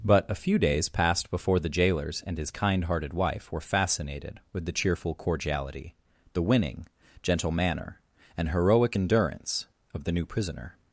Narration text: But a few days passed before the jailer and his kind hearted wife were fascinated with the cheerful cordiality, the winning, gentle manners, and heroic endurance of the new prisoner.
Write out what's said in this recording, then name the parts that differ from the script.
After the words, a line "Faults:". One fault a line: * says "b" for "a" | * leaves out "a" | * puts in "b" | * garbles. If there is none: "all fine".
But a few days passed before the jailers and his kind hearted wife were fascinated with the cheerful cordiality, the winning, gentle manner, and heroic endurance of the new prisoner.
Faults:
* says "jailers" for "jailer"
* says "manner" for "manners"